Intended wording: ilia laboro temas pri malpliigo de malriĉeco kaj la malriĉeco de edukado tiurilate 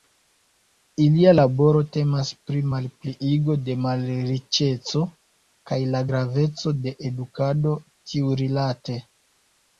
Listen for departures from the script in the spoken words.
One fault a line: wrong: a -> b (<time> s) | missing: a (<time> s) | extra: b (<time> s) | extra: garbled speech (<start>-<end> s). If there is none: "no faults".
wrong: malriĉeco -> graveco (6.1 s)